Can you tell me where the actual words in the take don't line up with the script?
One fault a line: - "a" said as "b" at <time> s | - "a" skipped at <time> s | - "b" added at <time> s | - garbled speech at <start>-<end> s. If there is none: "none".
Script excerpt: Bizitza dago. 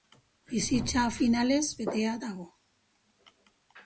- "finalez betea" added at 1.2 s